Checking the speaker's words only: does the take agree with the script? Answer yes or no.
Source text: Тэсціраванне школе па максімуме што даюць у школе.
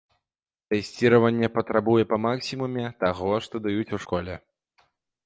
no